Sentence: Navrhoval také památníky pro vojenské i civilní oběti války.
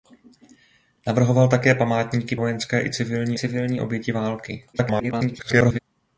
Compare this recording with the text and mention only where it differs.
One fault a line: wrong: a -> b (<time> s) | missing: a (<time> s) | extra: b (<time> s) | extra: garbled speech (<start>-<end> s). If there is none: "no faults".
missing: pro (2.4 s)
extra: civilní (3.4 s)
extra: garbled speech (4.7-5.8 s)